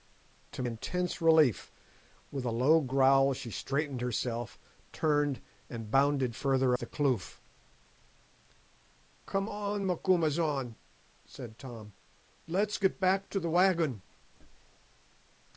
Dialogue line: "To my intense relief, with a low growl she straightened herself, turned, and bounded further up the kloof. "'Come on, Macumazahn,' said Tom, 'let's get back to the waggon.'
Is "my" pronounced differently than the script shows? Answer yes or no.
yes